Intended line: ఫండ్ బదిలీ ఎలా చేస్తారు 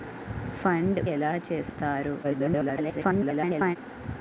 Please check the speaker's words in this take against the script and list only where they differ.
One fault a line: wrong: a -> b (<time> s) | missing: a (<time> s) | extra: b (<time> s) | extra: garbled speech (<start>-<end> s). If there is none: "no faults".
missing: బదిలీ (1.0 s)
extra: garbled speech (2.2-3.8 s)